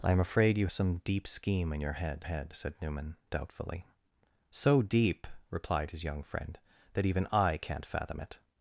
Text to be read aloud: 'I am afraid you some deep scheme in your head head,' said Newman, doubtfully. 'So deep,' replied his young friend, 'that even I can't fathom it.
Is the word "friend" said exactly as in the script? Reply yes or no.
yes